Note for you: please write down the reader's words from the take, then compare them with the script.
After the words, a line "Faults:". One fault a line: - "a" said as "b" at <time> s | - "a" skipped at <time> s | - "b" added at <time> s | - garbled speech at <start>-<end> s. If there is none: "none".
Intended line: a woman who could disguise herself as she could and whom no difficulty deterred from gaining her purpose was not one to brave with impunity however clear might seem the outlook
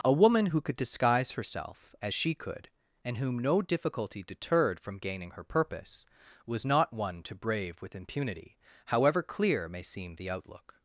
a woman who could disguise herself as she could and whom no difficulty deterred from gaining her purpose was not one to brave with impunity however clear may seem the outlook
Faults:
- "might" said as "may" at 9.7 s